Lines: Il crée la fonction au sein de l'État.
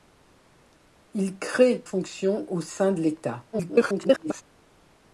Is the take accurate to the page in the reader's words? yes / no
no